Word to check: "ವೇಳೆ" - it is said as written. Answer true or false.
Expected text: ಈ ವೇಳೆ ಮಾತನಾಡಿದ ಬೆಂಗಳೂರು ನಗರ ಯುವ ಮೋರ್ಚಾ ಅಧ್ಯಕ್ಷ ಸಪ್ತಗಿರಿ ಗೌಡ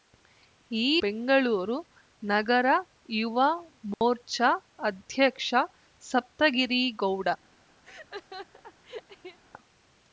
false